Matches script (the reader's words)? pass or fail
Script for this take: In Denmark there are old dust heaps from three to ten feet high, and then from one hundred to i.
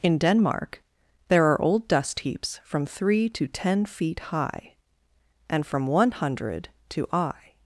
fail